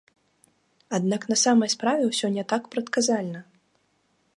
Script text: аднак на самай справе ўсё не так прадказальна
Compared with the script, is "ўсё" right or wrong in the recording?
right